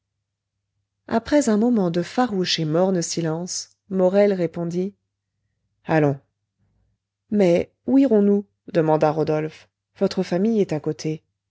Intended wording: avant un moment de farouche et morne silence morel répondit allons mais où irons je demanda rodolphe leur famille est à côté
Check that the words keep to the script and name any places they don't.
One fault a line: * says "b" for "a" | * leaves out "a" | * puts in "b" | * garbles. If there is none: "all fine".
* says "après" for "avant"
* says "nous" for "je"
* says "votre" for "leur"